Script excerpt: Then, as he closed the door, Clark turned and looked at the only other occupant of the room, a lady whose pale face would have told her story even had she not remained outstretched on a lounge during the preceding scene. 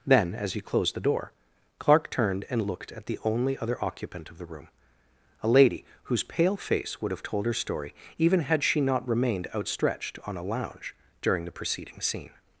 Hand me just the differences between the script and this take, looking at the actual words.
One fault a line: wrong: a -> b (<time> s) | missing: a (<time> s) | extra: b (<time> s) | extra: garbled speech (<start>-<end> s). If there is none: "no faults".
no faults